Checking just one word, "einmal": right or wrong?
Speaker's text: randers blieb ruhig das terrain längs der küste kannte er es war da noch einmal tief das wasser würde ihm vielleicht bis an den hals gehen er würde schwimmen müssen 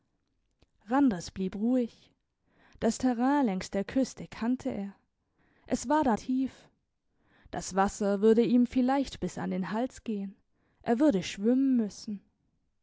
wrong